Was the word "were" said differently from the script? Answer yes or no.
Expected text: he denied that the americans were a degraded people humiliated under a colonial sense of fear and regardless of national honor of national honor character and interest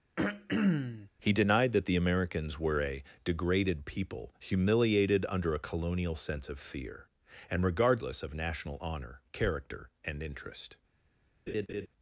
no